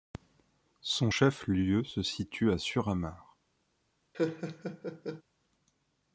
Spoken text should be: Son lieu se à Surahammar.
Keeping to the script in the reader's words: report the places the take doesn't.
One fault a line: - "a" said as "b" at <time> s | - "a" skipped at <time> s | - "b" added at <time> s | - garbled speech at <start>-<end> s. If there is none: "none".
- "chef" added at 1.1 s
- "situe" added at 2.0 s